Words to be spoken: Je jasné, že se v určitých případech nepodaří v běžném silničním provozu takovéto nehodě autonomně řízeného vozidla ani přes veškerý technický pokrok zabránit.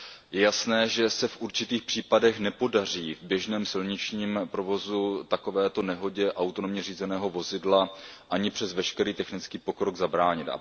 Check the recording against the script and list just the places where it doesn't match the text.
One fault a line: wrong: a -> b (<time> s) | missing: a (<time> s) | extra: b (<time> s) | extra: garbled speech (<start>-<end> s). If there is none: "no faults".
no faults